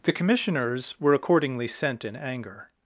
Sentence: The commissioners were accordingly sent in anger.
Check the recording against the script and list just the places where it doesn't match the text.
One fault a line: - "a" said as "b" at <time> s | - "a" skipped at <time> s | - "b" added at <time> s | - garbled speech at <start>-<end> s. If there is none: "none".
none